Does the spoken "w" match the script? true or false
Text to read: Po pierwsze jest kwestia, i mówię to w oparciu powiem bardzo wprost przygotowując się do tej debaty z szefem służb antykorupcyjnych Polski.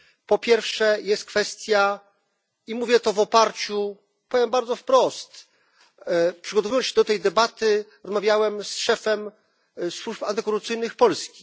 true